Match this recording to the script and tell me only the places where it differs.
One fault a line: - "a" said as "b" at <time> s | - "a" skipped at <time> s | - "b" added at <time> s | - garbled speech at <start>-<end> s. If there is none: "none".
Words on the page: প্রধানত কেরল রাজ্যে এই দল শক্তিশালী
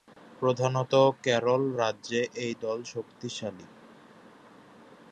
none